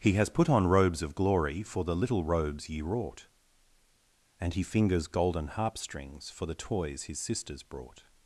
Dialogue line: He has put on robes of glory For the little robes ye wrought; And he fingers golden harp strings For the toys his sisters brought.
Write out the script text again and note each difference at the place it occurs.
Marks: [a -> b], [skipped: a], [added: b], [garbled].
He has put on robes of glory For the little robes ye wrought; And he fingers golden harp strings For the toys his sisters brought.